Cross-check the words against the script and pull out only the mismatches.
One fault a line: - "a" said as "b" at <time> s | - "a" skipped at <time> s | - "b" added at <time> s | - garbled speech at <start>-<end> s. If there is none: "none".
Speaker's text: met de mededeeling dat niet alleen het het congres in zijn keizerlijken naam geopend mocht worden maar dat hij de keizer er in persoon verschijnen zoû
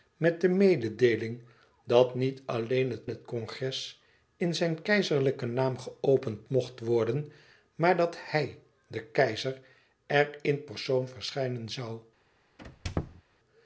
none